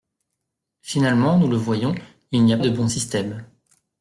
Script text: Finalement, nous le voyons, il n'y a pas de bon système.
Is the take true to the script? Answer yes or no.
no